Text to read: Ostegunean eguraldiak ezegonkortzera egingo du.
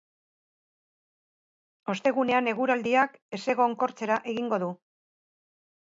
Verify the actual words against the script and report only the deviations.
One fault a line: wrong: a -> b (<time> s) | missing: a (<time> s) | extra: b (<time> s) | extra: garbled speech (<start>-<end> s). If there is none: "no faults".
no faults